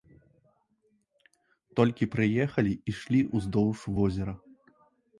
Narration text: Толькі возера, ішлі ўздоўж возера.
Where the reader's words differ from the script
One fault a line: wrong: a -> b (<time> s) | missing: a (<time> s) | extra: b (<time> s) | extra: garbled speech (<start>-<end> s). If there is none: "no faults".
wrong: возера -> прыехалі (2.2 s)